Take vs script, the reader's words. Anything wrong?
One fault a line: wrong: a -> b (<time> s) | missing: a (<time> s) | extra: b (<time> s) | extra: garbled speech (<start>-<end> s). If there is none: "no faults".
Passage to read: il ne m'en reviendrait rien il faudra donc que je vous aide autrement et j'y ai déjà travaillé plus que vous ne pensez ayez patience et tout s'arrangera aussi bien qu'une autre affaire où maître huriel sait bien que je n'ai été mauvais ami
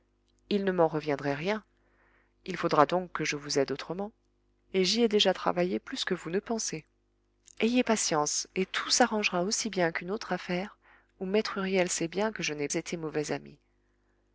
no faults